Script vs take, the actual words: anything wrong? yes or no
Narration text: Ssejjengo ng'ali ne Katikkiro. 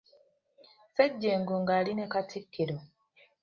no